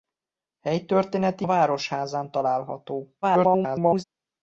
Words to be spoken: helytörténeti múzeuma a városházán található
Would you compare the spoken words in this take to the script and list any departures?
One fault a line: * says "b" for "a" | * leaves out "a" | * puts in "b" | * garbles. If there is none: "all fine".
* leaves out "múzeuma"
* garbles